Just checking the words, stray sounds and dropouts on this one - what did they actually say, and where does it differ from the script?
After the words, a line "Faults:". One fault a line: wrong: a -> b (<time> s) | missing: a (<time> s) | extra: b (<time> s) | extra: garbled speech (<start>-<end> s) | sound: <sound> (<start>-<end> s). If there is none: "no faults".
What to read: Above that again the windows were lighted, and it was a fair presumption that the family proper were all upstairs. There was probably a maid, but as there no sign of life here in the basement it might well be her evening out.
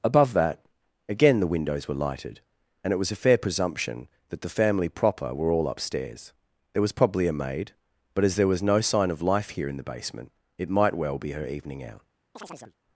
Above that again the windows were lighted, and it was a fair presumption that the family proper were all upstairs. There was probably a maid, but as there was no sign of life here in the basement it might well be her evening out.
Faults:
extra: was (8.5 s)
sound: chirp (12.4-12.8 s)